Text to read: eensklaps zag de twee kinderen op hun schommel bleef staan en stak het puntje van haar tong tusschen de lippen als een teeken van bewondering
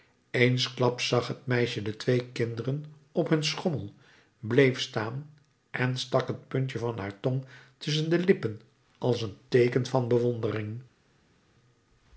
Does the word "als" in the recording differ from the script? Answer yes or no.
no